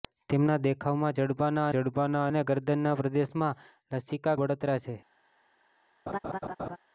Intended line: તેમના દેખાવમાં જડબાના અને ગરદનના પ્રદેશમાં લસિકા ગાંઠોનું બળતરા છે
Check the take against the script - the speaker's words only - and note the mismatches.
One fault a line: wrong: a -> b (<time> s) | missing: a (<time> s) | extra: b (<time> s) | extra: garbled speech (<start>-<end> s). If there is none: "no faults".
extra: જડબાના (1.7 s)
missing: ગાંઠોનું (4.4 s)